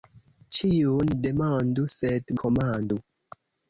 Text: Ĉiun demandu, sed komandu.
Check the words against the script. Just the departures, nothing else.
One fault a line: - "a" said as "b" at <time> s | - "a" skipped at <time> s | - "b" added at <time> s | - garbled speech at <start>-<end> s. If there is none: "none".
none